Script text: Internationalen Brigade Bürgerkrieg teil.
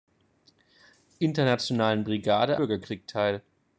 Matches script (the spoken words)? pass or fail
pass